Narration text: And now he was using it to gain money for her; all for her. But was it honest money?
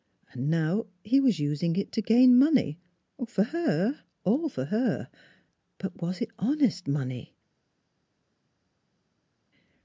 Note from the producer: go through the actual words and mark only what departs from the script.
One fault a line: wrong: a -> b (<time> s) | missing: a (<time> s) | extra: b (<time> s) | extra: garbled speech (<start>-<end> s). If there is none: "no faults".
no faults